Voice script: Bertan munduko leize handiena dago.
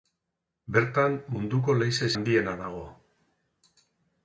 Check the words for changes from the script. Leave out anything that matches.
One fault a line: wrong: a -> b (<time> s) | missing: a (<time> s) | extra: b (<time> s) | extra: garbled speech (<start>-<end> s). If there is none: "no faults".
no faults